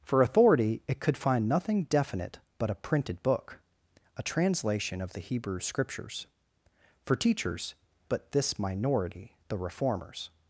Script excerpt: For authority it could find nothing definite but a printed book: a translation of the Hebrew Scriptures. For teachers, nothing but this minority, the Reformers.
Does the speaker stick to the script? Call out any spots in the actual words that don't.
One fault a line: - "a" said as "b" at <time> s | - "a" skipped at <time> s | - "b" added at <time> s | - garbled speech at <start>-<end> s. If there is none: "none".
- "nothing" skipped at 7.8 s